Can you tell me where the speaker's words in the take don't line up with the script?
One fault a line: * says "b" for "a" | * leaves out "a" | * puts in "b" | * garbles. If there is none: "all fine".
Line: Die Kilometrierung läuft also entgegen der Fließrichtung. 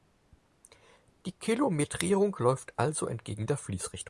all fine